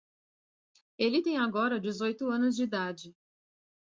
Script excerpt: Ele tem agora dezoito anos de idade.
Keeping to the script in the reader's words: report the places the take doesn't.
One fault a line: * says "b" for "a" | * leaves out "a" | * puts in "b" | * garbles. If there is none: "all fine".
all fine